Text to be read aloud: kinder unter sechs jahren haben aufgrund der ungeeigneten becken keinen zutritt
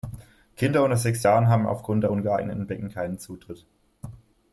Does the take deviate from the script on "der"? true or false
false